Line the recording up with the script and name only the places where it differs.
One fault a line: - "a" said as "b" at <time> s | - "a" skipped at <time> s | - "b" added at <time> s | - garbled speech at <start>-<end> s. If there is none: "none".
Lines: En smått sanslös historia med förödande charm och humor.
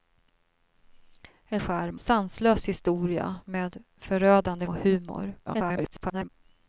- "smått" said as "charm" at 1.6 s
- "charm" skipped at 4.7 s
- garbled speech at 5.5-6.3 s